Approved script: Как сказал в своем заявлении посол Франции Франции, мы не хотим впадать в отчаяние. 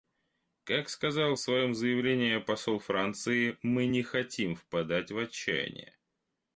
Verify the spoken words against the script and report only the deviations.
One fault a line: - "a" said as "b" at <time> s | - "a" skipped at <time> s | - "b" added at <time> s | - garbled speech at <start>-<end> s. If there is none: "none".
- "Франции" skipped at 3.6 s